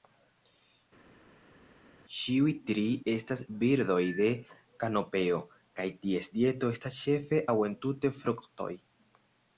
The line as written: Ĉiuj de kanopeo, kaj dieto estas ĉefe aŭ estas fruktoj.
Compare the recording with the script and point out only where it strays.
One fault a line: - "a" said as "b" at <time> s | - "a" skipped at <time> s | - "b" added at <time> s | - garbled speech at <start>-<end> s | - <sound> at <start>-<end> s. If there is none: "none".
- "tri estas birdoj" added at 2.7 s
- "ties" added at 6.1 s
- "estas" said as "entute" at 7.7 s